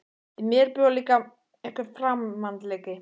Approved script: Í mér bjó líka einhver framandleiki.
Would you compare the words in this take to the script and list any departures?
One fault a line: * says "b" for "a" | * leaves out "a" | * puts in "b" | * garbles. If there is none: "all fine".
all fine